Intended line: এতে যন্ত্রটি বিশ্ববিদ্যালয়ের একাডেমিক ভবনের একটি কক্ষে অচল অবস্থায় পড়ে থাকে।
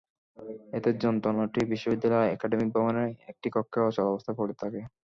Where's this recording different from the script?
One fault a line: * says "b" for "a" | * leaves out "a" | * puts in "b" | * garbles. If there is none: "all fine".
all fine